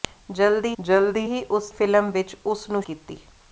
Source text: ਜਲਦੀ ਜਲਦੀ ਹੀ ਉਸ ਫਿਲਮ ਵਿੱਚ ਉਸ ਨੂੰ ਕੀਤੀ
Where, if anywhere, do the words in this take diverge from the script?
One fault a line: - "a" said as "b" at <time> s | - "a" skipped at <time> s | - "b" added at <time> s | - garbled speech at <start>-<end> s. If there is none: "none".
none